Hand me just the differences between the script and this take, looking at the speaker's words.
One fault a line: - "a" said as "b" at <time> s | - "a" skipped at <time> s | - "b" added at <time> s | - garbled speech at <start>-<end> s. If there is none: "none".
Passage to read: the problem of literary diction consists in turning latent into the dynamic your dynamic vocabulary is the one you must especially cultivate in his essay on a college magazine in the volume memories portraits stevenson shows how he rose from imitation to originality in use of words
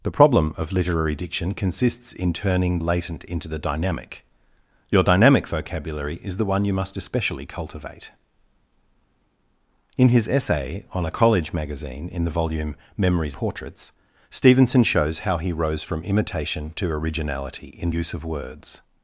none